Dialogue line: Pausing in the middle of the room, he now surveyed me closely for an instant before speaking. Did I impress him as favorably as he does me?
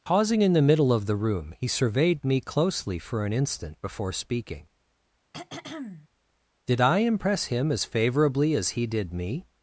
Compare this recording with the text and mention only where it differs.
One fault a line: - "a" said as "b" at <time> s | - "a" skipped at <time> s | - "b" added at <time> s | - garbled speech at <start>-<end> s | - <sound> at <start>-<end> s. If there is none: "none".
- "now" skipped at 1.7 s
- throat clearing at 5.3-6.1 s
- "does" said as "did" at 8.9 s